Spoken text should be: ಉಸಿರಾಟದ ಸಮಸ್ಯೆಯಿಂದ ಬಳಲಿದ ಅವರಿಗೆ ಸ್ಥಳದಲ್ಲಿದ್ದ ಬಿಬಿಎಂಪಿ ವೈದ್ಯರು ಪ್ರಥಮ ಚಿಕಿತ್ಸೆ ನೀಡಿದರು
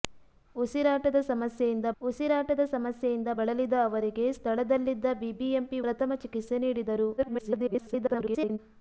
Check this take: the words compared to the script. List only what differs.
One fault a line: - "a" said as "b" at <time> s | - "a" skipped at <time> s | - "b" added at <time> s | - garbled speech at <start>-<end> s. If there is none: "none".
- "ಉಸಿರಾಟದ ಸಮಸ್ಯೆಯಿಂದ" added at 2.0 s
- "ವೈದ್ಯರು" skipped at 5.8 s
- garbled speech at 7.2-8.6 s